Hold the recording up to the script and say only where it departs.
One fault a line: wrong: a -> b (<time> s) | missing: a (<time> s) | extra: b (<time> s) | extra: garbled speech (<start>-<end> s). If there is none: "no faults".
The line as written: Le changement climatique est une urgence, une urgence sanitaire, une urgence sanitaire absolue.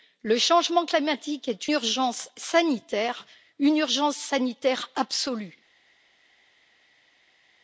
missing: une urgence une (1.7 s)